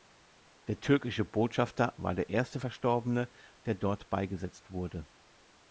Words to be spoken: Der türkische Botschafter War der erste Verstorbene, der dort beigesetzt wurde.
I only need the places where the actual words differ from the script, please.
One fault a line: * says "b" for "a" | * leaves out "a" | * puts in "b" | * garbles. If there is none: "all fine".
all fine